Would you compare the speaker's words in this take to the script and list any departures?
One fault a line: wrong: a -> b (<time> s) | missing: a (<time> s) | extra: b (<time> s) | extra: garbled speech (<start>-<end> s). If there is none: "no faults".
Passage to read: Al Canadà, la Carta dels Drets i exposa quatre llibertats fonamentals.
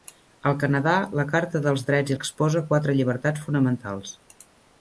no faults